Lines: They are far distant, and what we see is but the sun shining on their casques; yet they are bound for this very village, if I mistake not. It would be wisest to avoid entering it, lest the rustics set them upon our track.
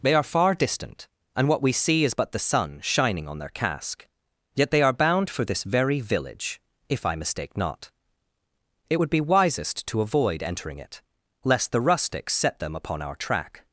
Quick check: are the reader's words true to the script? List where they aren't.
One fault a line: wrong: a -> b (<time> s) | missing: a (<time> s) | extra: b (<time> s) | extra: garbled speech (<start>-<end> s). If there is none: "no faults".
wrong: casques -> casque (3.5 s)